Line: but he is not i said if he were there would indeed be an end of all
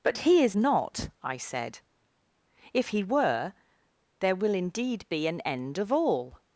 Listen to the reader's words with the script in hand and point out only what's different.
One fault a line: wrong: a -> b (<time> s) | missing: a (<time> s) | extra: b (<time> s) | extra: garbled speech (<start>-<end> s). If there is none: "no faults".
wrong: would -> will (4.3 s)